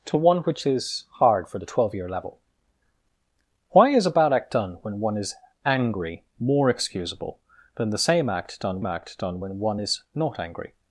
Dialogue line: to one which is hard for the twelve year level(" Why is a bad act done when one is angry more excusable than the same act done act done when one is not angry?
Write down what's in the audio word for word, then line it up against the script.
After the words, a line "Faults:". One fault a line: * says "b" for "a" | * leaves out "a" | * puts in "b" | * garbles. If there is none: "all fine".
to one which is hard for the twelve year level(" Why is a bad act done when one is angry more excusable than the same act done act done when one is not angry?
Faults:
all fine